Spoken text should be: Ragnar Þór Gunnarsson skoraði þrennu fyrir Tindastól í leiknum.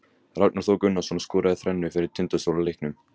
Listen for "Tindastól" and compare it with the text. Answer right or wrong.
right